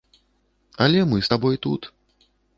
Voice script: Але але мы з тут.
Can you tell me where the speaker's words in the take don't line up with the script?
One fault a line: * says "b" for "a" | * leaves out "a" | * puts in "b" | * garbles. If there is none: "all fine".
* leaves out "але"
* puts in "табой"